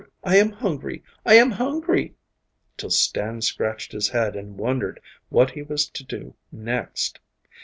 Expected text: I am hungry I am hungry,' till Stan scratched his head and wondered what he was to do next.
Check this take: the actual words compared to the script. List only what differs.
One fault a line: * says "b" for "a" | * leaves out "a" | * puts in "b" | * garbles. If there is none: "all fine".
all fine